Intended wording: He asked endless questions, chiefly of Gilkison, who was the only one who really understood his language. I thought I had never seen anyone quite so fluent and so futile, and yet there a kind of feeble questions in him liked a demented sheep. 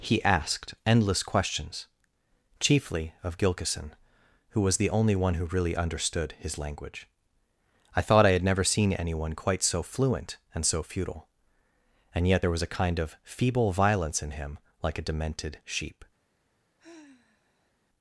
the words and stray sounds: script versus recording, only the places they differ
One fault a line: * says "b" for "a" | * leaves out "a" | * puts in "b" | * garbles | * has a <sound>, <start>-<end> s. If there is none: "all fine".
* puts in "was"
* says "violence" for "questions"
* says "like" for "liked"
* has a sigh, 16.8-17.7 s